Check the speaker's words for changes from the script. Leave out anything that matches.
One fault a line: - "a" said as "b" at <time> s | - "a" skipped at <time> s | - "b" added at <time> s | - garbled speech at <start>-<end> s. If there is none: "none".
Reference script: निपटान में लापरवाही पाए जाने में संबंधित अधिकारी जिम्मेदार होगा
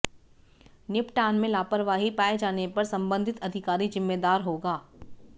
- "में" said as "पर" at 2.7 s